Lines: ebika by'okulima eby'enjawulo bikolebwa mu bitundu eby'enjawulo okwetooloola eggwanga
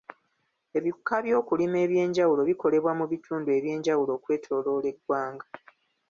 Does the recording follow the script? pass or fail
pass